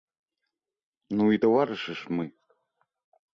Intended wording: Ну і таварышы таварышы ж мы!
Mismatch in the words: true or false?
true